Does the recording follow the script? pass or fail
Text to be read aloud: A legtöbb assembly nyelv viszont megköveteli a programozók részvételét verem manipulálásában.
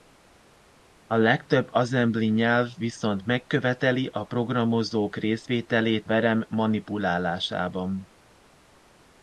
pass